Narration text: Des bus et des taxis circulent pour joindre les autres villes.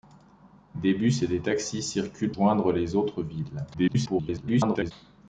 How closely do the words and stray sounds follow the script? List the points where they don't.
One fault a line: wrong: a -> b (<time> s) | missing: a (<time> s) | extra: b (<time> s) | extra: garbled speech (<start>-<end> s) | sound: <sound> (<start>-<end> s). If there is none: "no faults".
missing: pour (2.3 s)
extra: garbled speech (3.7-4.9 s)